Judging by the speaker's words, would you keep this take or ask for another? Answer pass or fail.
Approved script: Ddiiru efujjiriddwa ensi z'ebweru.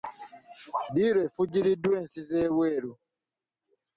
pass